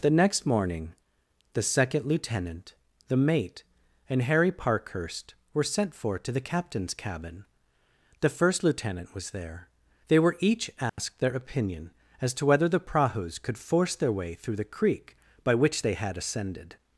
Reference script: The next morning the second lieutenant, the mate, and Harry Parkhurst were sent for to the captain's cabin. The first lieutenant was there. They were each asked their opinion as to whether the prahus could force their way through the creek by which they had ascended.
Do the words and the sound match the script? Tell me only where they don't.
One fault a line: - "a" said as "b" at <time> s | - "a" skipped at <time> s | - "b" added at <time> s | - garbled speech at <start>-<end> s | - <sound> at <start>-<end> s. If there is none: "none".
- dropout at 10.9-11.0 s